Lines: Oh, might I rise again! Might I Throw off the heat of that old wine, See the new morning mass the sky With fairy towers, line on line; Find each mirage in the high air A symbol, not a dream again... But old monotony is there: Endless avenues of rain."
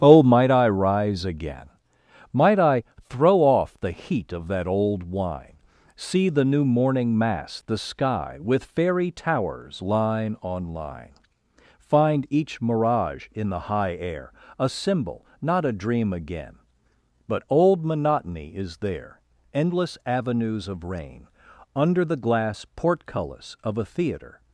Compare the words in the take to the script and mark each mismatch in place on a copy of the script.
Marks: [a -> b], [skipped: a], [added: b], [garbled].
Oh, might I rise again! Might I Throw off the heat of that old wine, See the new morning mass the sky With fairy towers, line on line; Find each mirage in the high air A symbol, not a dream again... But old monotony is there: Endless avenues of rain." [added: Under the glass portcullis of a theatre]